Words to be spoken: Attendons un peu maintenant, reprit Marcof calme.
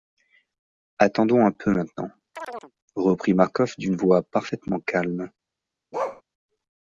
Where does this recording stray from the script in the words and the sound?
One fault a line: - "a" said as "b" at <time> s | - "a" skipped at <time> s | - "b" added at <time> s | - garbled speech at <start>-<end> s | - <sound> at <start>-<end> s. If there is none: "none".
- chirp at 2.3-2.7 s
- "d'une voix parfaitement" added at 3.8 s
- bark at 5.9-6.2 s